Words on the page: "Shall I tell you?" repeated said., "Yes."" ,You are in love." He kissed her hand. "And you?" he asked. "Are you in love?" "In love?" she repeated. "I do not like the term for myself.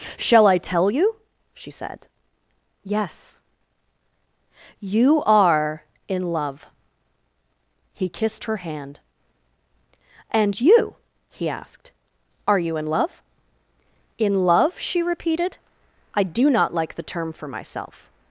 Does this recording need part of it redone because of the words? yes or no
yes